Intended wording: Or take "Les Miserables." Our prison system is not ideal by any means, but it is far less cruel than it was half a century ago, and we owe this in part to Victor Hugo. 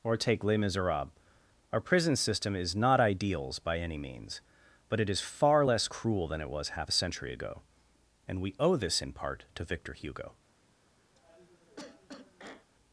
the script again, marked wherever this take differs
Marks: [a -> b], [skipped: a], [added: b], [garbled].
Or take "Les Miserables." Our prison system is not [ideal -> ideals] by any means, but it is far less cruel than it was half a century ago, and we owe this in part to Victor Hugo.